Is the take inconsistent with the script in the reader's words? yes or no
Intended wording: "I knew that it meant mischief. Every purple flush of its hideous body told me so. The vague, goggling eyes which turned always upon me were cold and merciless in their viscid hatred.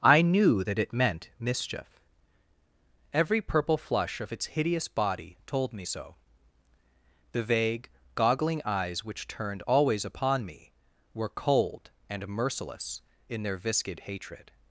no